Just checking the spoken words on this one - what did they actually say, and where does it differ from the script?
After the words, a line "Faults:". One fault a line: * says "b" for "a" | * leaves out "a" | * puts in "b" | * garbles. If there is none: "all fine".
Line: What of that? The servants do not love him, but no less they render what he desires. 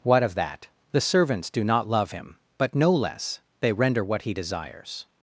What of that? The servants do not love him, but no less they render what he desires.
Faults:
all fine